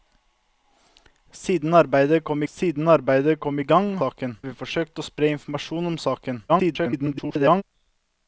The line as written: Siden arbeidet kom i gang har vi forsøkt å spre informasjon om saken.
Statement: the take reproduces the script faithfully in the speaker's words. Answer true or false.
false